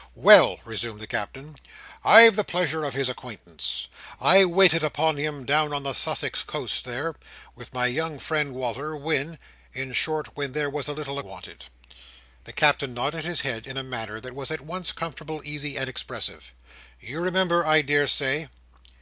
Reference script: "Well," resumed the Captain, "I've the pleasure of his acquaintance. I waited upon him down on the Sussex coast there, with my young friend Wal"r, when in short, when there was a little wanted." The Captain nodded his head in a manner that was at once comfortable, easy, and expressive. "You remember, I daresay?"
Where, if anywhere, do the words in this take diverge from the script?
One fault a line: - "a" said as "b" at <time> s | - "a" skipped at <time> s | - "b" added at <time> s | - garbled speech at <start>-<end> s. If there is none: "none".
none